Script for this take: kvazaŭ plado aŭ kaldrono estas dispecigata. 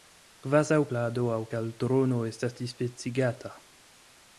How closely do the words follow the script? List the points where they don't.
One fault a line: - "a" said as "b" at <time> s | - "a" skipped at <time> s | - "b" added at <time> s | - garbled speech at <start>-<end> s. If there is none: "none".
none